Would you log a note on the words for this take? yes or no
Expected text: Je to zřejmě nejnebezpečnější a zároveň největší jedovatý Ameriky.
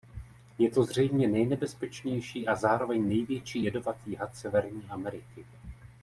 yes